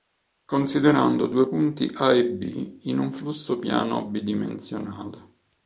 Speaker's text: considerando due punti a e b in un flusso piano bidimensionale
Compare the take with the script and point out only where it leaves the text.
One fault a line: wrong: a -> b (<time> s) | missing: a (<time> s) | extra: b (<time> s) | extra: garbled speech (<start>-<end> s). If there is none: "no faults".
no faults